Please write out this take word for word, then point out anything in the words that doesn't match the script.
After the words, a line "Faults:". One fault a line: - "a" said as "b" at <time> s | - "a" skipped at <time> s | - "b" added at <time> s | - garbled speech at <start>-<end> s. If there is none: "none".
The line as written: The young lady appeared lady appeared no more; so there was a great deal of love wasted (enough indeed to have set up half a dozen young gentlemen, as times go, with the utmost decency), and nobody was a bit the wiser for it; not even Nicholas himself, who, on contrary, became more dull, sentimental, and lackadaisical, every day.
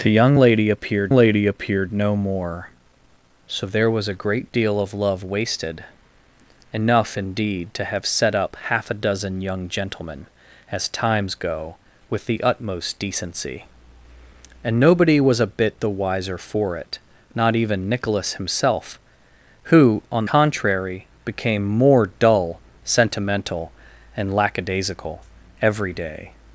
The young lady appeared lady appeared no more; so there was a great deal of love wasted (enough indeed to have set up half a dozen young gentlemen, as times go, with the utmost decency), and nobody was a bit the wiser for it; not even Nicholas himself, who, on contrary, became more dull, sentimental, and lackadaisical, every day.
Faults:
none